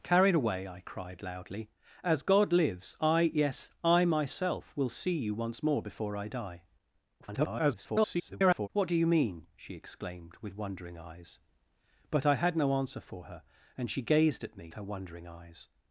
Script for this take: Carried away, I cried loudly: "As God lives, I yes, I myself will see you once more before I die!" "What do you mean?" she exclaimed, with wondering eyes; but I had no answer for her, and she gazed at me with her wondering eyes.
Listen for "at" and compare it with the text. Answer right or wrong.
right